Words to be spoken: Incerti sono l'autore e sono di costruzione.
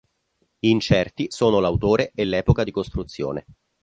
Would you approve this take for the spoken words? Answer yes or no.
no